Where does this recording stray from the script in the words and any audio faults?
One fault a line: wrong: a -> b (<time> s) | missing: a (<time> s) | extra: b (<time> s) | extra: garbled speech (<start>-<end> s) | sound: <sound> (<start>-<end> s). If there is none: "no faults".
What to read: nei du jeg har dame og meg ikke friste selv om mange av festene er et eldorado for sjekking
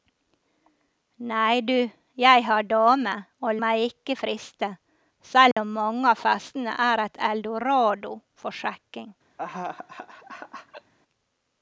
sound: dropout (5.5-5.6 s)
sound: laugh (9.4-10.9 s)